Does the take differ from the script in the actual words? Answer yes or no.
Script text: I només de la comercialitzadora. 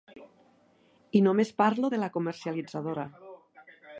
yes